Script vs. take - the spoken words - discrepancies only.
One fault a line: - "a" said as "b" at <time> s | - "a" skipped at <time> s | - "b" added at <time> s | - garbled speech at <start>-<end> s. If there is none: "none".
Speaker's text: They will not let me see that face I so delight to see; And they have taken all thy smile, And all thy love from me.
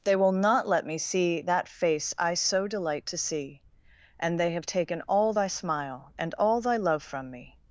none